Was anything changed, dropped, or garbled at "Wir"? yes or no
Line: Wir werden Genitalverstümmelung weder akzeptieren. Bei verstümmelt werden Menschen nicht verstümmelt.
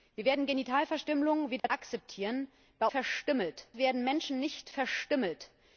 no